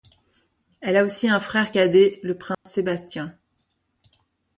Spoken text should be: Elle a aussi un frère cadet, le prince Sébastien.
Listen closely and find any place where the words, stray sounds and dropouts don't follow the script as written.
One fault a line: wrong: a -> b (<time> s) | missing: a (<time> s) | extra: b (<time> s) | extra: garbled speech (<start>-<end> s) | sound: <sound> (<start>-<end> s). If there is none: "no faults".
sound: dropout (2.5-2.7 s)